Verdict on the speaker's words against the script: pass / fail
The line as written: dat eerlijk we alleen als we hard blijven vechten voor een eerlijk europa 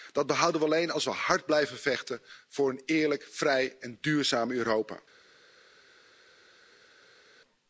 fail